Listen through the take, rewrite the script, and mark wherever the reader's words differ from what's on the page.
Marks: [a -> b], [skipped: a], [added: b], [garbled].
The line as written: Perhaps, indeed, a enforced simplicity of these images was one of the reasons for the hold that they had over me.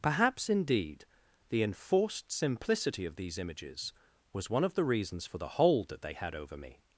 Perhaps, indeed, [a -> the] enforced simplicity of these images was one of the reasons for the hold that they had over me.